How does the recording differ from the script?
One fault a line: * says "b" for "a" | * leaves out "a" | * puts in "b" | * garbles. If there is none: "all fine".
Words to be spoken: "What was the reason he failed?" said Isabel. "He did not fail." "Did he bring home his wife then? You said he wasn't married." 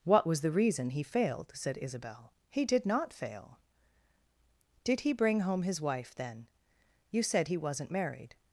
all fine